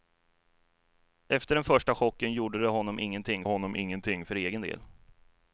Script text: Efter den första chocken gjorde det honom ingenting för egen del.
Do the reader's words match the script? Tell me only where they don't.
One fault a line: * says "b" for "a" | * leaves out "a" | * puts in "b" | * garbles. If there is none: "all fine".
* puts in "honom ingenting"